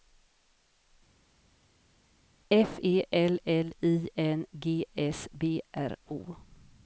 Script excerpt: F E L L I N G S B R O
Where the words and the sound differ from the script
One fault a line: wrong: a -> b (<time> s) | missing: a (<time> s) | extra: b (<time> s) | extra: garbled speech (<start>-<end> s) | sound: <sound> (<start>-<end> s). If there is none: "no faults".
no faults